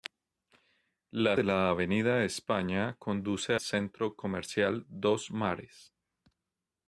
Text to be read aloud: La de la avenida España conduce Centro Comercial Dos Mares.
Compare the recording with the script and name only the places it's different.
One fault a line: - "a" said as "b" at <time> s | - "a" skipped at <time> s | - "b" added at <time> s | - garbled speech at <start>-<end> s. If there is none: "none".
none